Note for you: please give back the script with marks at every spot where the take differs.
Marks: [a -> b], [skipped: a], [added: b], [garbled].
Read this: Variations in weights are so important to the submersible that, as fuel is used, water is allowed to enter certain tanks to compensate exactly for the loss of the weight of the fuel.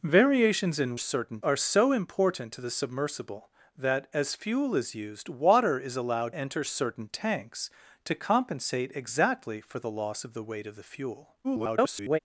Variations in [weights -> certain] are so important to the submersible that, as fuel is used, water is allowed [skipped: to] enter certain tanks to compensate exactly for the loss of the weight of the fuel. [garbled]